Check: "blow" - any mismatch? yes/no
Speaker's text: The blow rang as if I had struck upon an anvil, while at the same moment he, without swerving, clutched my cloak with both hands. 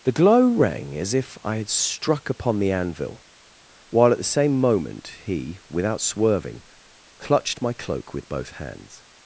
yes